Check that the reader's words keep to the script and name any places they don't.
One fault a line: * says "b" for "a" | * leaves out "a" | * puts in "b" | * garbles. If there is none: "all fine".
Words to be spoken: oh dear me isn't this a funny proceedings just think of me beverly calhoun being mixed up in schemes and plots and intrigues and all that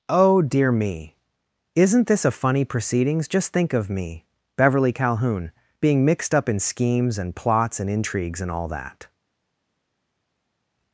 all fine